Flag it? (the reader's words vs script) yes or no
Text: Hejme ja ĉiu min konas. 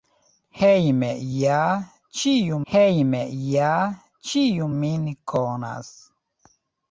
yes